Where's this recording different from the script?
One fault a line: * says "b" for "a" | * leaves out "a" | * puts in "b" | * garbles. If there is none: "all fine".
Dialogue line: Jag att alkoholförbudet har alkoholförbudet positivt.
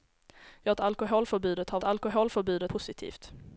all fine